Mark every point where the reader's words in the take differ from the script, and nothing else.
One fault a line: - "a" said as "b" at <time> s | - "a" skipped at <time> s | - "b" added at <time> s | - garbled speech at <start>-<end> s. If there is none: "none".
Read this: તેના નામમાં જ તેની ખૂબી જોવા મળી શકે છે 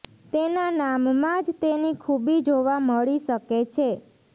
none